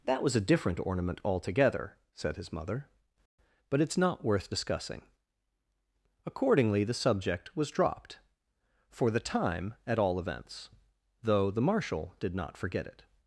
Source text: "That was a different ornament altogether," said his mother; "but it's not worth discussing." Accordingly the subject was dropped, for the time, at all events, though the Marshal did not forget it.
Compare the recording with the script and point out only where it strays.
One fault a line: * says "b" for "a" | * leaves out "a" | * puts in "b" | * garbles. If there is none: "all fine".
all fine